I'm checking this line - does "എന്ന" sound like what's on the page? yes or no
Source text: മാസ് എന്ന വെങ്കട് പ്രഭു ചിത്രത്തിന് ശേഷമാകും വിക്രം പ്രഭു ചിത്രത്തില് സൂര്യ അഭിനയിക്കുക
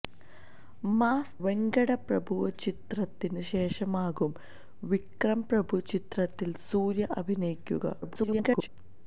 no